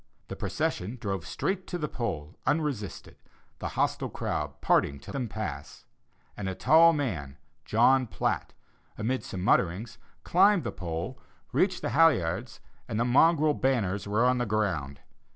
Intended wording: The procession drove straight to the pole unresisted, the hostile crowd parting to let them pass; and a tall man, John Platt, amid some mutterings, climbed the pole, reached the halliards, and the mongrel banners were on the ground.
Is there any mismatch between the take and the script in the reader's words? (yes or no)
yes